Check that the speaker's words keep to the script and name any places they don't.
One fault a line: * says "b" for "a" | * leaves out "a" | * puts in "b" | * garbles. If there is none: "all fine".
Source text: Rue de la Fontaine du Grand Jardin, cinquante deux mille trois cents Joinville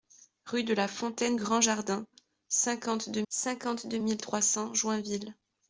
* leaves out "du"
* puts in "cinquante deux"